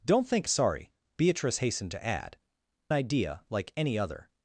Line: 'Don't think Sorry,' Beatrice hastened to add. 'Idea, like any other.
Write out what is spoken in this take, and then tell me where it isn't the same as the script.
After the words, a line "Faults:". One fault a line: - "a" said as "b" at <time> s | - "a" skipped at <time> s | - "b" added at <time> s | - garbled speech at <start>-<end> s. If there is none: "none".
'Don't think Sorry,' Beatrice hastened to add. 'Idea, like any other.
Faults:
none